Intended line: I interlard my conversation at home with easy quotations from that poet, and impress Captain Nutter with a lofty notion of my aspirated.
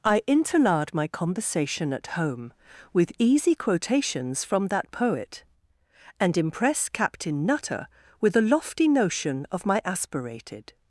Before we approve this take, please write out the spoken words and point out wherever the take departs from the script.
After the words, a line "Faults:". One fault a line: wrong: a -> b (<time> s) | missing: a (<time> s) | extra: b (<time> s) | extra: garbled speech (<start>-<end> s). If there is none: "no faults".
I interlard my conversation at home with easy quotations from that poet, and impress Captain Nutter with a lofty notion of my aspirated.
Faults:
no faults